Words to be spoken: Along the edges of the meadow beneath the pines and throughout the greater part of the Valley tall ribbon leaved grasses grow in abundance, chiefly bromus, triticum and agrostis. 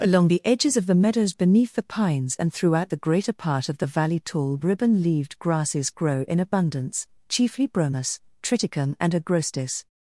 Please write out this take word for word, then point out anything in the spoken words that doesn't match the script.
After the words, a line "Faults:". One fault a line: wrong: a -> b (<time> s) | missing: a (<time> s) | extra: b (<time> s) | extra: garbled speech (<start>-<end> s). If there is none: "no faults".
Along the edges of the meadows beneath the pines and throughout the greater part of the Valley tall ribbon leaved grasses grow in abundance, chiefly bromus, triticum and agrostis.
Faults:
wrong: meadow -> meadows (0.9 s)